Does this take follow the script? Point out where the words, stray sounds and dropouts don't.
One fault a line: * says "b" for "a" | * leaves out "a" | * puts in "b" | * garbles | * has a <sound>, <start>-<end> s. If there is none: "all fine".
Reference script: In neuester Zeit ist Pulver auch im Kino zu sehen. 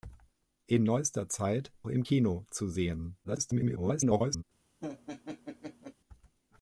* leaves out "ist Pulver auch"
* garbles
* has a laugh, 4.8-5.9 s